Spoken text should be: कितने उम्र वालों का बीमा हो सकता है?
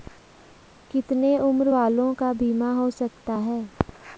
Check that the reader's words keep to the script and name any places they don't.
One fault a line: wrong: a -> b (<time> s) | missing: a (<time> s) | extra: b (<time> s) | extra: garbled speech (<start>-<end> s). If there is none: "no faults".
no faults